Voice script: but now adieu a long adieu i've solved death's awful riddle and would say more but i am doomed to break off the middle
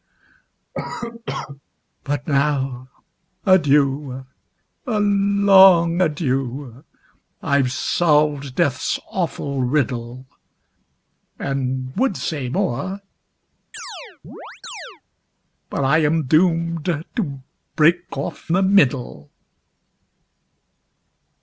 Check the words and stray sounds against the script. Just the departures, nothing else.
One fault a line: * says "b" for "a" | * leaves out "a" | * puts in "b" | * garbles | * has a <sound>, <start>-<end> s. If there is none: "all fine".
* has a cough, 0.7-1.6 s
* has a chirp, 13.7-15.0 s